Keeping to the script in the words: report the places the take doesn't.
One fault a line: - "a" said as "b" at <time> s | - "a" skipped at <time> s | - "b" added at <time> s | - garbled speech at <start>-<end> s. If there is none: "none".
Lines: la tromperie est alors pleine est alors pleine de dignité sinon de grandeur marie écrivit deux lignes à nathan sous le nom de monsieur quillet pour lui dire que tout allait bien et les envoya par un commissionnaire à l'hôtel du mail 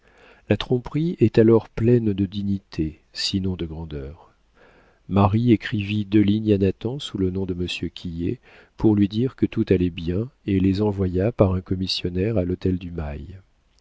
- "est alors pleine" skipped at 2.1 s